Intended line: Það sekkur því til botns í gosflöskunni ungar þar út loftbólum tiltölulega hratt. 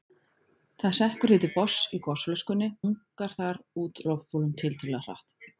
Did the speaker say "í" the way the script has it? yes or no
yes